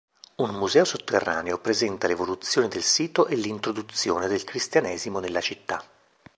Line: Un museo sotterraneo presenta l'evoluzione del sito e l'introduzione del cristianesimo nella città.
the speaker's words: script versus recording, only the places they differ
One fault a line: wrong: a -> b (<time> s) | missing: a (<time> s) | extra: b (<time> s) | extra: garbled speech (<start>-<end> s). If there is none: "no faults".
no faults